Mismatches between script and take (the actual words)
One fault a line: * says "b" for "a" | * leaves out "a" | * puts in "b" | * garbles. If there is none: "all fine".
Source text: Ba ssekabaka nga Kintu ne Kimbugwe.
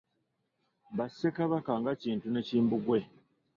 all fine